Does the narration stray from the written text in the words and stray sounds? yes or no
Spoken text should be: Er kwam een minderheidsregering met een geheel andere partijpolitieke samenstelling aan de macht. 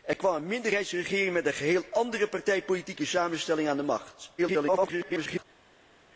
yes